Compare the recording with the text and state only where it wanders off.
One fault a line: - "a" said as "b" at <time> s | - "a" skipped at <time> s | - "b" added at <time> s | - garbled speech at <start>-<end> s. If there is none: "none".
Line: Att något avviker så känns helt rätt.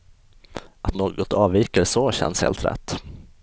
none